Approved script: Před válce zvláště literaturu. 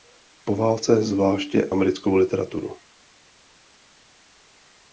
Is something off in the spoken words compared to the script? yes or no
yes